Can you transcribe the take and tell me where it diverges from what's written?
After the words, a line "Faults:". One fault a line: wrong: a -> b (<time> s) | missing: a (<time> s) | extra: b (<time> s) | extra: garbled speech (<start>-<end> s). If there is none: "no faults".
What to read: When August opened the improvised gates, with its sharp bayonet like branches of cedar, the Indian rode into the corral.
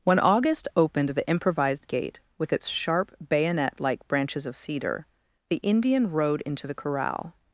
When August opened the improvised gate, with its sharp bayonet like branches of cedar, the Indian rode into the corral.
Faults:
wrong: gates -> gate (1.9 s)